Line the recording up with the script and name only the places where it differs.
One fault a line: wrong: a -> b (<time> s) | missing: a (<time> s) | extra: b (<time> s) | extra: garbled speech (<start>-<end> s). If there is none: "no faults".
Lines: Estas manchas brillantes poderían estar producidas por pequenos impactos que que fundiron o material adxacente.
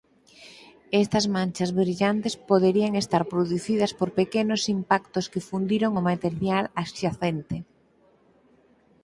missing: que (5.5 s)